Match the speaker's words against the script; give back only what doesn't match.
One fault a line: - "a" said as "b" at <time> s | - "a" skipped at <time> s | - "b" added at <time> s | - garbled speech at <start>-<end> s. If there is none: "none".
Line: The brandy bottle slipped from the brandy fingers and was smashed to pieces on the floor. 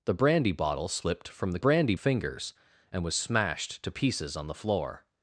none